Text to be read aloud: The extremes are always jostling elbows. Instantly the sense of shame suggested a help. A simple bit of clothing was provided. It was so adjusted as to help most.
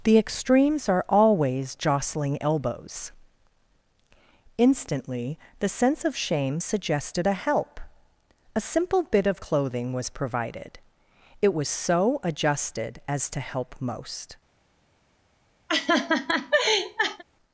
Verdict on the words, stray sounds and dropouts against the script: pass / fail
fail